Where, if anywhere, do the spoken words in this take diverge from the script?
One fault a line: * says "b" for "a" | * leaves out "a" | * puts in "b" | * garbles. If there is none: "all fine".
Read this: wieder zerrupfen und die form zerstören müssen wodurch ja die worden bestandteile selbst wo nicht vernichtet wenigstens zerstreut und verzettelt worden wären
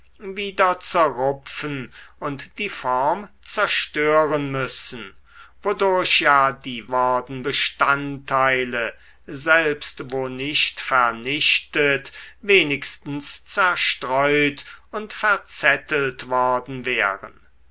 all fine